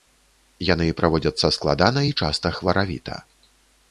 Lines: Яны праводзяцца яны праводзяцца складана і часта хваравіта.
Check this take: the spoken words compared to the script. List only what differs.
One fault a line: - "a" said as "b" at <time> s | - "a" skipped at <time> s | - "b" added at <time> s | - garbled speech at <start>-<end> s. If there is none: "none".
- "яны праводзяцца" skipped at 1.5 s